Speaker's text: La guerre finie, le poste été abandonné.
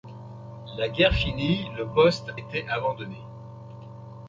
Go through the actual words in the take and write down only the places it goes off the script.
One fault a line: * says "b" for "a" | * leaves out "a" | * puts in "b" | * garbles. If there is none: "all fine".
all fine